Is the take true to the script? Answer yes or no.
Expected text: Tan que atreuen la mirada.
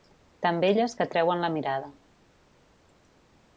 no